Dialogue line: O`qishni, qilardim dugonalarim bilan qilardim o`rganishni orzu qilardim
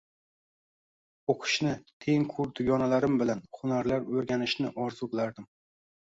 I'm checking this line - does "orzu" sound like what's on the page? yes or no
yes